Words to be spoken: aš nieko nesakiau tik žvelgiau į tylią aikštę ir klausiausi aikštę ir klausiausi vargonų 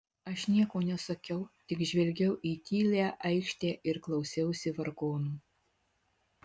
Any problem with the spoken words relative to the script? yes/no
yes